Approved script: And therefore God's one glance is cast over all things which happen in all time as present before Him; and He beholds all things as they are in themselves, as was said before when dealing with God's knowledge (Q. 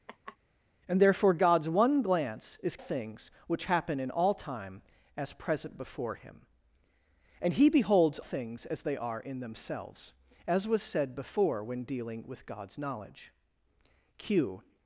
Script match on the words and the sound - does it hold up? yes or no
no